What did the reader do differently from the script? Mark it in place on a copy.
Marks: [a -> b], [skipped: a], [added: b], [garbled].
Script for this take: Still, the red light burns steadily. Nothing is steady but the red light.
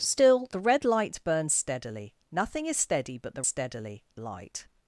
Still, the red light burns steadily. Nothing is steady but the [red -> steadily] light.